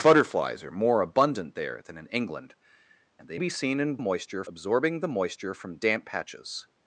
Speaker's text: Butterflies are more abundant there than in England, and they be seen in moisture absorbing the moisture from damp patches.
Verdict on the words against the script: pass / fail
pass